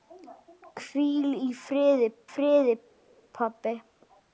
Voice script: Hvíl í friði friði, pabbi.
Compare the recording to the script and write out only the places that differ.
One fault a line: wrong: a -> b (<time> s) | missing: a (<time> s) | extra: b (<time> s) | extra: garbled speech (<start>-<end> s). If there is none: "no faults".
no faults